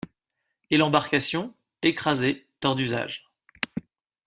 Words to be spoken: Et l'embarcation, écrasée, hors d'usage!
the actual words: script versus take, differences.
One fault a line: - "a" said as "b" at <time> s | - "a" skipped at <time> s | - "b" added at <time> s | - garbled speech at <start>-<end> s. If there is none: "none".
none